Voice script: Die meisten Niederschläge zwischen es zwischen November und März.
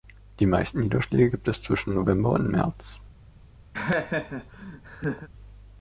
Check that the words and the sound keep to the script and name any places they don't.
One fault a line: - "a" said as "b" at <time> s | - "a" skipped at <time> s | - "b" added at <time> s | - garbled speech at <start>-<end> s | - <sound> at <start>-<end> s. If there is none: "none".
- "zwischen" said as "gibt" at 1.3 s
- laugh at 3.7-5.3 s